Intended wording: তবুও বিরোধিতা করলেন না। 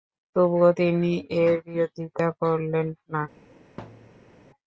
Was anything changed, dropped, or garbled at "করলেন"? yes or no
no